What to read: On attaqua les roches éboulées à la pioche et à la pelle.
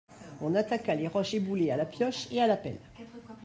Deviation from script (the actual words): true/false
false